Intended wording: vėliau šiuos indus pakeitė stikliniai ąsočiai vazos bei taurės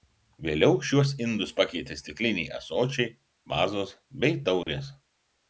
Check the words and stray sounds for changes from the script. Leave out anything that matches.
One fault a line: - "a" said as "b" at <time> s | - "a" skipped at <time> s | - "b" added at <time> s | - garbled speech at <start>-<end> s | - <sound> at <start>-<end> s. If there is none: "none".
- dropout at 4.6-4.7 s